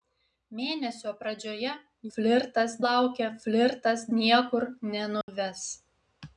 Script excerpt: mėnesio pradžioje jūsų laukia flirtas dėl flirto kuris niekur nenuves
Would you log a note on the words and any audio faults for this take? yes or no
yes